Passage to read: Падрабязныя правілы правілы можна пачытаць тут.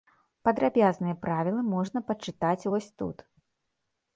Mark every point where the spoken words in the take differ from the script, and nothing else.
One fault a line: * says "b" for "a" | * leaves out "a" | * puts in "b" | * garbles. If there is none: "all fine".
* leaves out "правілы"
* puts in "вось"